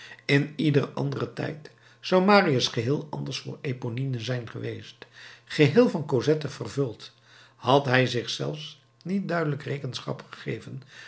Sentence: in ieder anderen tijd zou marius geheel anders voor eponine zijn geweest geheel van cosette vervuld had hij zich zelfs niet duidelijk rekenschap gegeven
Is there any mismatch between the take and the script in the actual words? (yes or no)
no